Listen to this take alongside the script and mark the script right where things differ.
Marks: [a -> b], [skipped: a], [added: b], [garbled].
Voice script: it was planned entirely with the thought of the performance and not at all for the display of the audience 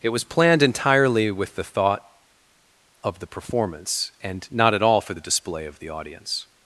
it was planned entirely with the thought of the performance and not at all for the display of the audience